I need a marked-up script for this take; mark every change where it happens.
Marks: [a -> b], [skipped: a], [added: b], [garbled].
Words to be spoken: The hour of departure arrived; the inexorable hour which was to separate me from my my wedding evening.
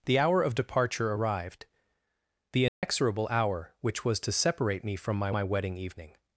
The hour of departure arrived; the inexorable hour which was to separate me from my my wedding evening.